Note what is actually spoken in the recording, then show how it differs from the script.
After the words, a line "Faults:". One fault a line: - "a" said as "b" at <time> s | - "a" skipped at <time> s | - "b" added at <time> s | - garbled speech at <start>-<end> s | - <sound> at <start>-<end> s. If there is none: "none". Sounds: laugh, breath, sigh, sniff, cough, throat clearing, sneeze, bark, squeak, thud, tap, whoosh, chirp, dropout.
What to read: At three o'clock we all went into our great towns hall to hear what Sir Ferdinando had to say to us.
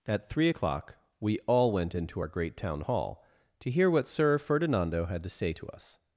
At three o'clock we all went into our great town hall to hear what Sir Ferdinando had to say to us.
Faults:
- "towns" said as "town" at 2.6 s